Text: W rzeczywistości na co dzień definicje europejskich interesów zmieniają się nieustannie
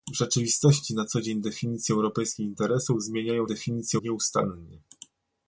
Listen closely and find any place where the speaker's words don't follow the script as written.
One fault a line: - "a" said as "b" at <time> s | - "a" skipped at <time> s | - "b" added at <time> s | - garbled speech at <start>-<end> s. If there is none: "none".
- "się" said as "definicje" at 3.5 s